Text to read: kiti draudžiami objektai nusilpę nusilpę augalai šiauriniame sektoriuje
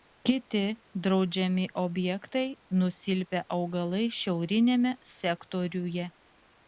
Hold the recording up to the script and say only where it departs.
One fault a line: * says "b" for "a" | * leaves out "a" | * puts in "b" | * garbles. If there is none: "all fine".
* leaves out "nusilpę"